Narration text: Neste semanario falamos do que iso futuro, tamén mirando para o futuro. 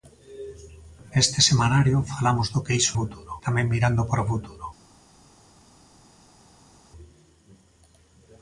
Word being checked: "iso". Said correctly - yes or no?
yes